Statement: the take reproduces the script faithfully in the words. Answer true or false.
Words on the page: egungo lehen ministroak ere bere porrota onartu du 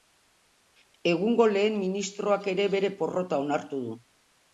true